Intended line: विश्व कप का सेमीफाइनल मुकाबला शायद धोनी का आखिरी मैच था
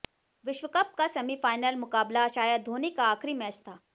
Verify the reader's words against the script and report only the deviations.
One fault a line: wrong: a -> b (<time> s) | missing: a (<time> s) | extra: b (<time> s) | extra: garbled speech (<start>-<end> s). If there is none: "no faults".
no faults